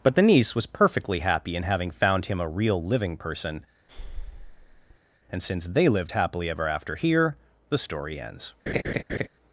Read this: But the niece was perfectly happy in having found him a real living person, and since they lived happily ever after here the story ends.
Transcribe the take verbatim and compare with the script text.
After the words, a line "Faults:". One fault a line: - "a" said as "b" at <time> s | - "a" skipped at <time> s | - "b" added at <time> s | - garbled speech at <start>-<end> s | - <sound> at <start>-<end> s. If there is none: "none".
But the niece was perfectly happy in having found him a real living person, and since they lived happily ever after here the story ends.
Faults:
- breath at 3.9-5.0 s
- laugh at 8.7-9.3 s